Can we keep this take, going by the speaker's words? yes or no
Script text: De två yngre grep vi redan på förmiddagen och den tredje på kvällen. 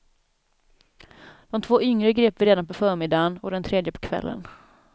yes